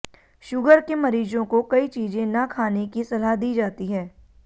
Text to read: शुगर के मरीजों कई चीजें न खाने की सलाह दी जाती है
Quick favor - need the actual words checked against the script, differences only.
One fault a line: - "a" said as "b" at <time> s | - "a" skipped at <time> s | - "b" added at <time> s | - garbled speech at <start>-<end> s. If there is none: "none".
- "को" added at 1.4 s